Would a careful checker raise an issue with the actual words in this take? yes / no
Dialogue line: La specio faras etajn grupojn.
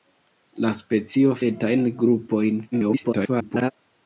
yes